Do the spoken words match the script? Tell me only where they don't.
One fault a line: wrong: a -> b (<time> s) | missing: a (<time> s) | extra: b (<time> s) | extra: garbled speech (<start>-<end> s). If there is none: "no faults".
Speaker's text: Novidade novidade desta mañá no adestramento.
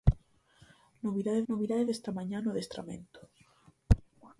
no faults